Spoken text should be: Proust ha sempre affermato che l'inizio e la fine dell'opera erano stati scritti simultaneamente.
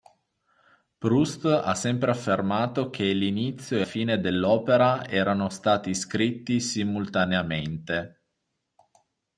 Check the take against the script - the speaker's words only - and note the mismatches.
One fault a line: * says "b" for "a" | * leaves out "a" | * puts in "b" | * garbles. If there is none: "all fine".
* leaves out "la"